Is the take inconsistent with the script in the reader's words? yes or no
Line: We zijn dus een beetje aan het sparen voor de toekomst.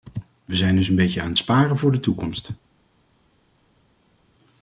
no